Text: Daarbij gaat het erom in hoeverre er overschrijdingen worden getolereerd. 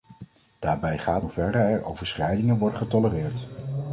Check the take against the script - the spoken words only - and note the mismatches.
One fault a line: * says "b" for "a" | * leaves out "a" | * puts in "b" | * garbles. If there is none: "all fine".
* leaves out "het erom in"